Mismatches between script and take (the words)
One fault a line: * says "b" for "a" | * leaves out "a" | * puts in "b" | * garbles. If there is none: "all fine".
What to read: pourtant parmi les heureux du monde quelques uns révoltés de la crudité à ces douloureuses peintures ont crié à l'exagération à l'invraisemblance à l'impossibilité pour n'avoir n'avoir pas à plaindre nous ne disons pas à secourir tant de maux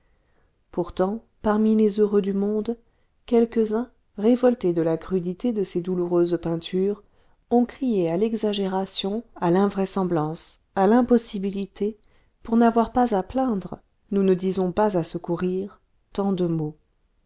* says "de" for "à"
* leaves out "n'avoir"